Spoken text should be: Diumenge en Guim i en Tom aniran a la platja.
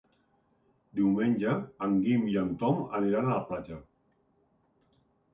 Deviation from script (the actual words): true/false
false